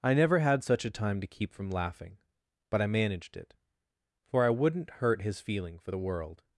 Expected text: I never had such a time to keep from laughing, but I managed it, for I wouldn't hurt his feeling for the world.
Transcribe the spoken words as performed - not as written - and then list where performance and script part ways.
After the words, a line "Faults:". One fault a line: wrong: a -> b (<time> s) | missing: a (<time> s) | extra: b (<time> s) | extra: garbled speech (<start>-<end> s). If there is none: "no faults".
I never had such a time to keep from laughing, but I managed it, for I wouldn't hurt his feeling for the world.
Faults:
no faults